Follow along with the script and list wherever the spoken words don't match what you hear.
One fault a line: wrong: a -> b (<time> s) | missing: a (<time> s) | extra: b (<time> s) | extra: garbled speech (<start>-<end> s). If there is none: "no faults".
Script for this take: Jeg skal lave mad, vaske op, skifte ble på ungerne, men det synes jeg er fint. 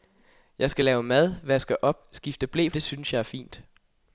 missing: på ungerne men (2.7 s)